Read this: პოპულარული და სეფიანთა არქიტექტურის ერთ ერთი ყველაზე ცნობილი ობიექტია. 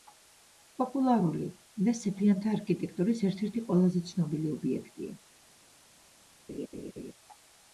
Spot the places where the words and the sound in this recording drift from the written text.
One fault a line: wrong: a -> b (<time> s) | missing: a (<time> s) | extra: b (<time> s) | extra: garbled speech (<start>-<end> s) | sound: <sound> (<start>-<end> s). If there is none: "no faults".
sound: laugh (6.5-7.1 s)